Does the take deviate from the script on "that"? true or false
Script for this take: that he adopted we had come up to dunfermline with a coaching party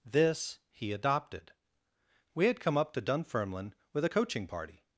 true